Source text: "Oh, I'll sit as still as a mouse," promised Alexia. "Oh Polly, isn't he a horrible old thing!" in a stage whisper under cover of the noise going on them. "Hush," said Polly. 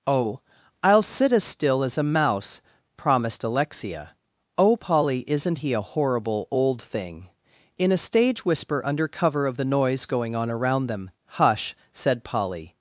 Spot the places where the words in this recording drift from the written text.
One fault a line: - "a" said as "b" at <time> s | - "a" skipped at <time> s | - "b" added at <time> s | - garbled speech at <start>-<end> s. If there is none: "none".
- "around" added at 10.5 s